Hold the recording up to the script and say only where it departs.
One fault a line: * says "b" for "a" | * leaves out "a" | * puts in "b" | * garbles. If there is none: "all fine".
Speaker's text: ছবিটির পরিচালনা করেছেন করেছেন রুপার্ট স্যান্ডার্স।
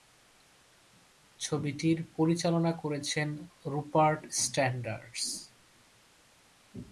* leaves out "করেছেন"